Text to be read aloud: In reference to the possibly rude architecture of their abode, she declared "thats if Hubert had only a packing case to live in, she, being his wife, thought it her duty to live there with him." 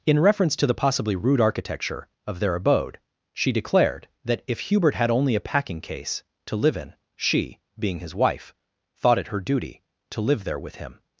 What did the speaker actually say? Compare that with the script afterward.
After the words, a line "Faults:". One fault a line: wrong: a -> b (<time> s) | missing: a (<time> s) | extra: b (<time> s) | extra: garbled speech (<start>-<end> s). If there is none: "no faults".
In reference to the possibly rude architecture of their abode, she declared "that if Hubert had only a packing case to live in, she, being his wife, thought it her duty to live there with him."
Faults:
wrong: thats -> that (4.2 s)